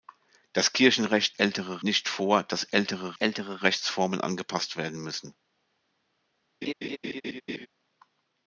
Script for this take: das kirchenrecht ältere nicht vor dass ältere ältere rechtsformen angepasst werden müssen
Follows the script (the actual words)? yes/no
yes